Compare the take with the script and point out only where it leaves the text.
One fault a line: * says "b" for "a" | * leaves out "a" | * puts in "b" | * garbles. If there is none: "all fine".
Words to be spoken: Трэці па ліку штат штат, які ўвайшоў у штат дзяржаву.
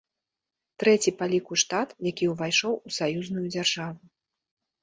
* leaves out "штат"
* says "саюзную" for "штат"